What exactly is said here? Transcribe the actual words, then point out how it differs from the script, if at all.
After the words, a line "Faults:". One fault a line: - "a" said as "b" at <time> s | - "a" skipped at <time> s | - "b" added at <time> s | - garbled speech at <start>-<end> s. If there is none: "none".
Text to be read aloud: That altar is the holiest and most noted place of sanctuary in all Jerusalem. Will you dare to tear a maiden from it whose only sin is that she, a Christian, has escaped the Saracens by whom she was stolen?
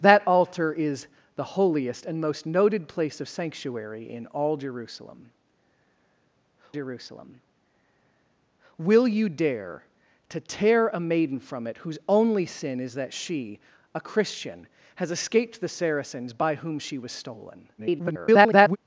That altar is the holiest and most noted place of sanctuary in all Jerusalem Jerusalem. Will you dare to tear a maiden from it whose only sin is that she, a Christian, has escaped the Saracens by whom she was stolen? [garbled]
Faults:
- "Jerusalem" added at 6.7 s
- garbled speech at 17.8-18.8 s